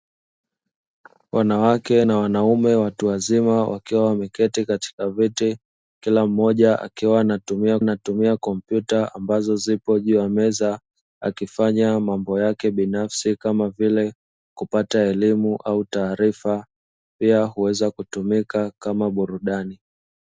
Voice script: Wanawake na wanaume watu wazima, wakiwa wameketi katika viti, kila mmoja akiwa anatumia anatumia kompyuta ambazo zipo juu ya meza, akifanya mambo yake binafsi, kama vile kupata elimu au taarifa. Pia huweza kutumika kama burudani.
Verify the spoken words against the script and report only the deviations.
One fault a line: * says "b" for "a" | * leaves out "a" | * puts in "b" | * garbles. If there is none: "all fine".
all fine